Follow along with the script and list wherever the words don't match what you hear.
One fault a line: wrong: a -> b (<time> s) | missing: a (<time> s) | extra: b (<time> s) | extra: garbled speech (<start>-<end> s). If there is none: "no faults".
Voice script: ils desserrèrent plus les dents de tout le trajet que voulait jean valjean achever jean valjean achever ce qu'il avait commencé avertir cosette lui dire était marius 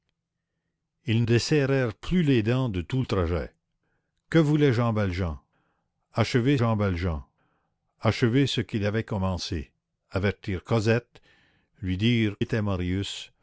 no faults